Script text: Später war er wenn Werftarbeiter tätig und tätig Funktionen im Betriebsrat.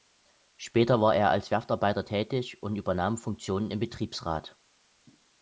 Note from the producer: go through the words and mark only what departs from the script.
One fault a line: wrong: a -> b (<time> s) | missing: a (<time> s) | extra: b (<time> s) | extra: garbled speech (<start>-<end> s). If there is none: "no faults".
wrong: wenn -> als (1.3 s)
wrong: tätig -> übernahm (2.8 s)